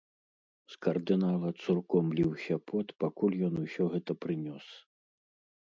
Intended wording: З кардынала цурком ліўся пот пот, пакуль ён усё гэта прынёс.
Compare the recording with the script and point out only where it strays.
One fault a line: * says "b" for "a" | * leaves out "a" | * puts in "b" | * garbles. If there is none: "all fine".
* leaves out "пот"